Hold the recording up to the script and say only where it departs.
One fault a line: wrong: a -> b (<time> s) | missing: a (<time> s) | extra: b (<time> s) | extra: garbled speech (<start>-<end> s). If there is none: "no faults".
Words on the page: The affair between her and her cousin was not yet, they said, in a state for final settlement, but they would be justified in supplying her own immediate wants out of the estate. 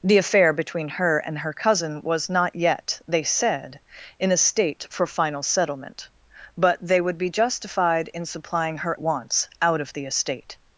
missing: own immediate (9.0 s)